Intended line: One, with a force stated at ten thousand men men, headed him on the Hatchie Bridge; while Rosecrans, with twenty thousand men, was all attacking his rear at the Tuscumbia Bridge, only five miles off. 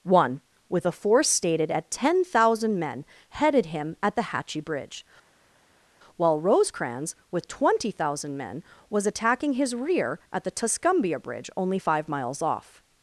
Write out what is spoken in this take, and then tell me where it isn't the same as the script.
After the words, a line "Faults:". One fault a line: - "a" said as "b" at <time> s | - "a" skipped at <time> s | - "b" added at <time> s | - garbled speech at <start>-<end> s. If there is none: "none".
One, with a force stated at ten thousand men, headed him at the Hatchie Bridge; while Rosecrans, with twenty thousand men, was attacking his rear at the Tuscumbia Bridge, only five miles off.
Faults:
- "men" skipped at 3.0 s
- "on" said as "at" at 4.0 s
- "all" skipped at 9.1 s